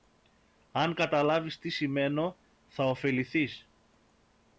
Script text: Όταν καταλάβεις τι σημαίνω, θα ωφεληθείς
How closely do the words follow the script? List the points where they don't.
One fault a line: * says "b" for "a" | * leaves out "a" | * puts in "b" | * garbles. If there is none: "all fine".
* says "Αν" for "Όταν"